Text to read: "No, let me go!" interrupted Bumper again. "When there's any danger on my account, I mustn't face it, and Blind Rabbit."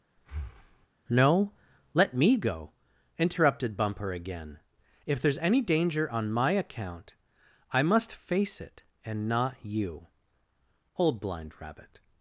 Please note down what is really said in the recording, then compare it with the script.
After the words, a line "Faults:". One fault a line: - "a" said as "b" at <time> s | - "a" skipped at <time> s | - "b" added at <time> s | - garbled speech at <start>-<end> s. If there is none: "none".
"No, let me go!" interrupted Bumper again. "If there's any danger on my account, I must face it, and not you. Old Blind Rabbit."
Faults:
- "When" said as "If" at 5.0 s
- "mustn't" said as "must" at 7.8 s
- "not you Old" added at 9.3 s